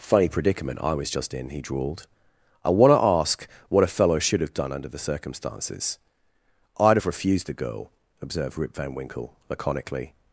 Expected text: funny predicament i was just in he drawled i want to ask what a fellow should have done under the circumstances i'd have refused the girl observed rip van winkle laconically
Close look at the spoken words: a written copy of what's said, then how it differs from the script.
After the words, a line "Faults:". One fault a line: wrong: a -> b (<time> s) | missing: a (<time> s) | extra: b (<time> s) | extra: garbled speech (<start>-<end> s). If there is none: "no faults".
funny predicament i was just in he drawled i want to ask what a fellow should have done under the circumstances i'd have refused the girl observed rip van winkle laconically
Faults:
no faults